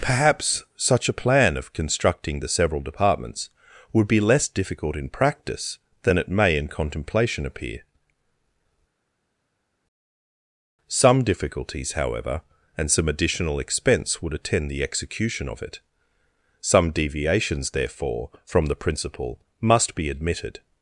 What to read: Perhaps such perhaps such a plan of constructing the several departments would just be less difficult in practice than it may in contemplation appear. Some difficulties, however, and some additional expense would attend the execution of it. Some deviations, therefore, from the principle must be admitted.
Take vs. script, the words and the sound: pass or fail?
fail